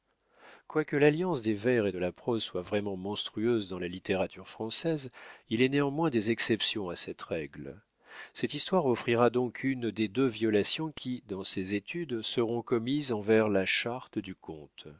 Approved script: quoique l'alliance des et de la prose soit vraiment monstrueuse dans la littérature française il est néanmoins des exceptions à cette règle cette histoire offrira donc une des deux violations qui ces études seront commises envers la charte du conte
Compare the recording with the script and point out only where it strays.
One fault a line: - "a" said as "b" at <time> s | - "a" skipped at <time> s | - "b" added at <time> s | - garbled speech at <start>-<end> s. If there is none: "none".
- "vers" added at 1.5 s
- "dans" added at 11.3 s